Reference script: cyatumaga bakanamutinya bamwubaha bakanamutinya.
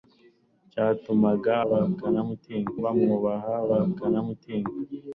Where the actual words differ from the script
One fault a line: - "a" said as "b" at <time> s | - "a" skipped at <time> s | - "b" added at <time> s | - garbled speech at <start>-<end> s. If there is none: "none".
none